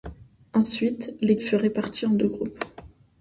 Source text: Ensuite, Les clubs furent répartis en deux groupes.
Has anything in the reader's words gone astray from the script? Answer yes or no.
yes